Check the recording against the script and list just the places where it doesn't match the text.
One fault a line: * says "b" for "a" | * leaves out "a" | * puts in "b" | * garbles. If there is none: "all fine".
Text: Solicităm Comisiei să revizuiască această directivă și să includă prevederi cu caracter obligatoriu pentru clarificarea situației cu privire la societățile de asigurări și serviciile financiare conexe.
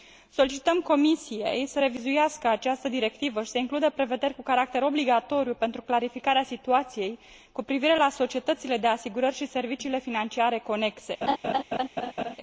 all fine